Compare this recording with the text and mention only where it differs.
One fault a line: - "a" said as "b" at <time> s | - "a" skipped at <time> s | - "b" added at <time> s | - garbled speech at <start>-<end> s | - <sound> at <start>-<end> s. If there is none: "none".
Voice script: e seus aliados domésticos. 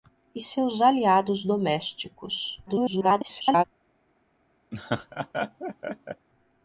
- garbled speech at 2.7-3.6 s
- laugh at 4.7-6.3 s